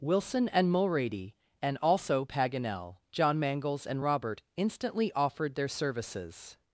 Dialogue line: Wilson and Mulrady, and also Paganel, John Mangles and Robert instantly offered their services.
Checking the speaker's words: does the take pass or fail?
pass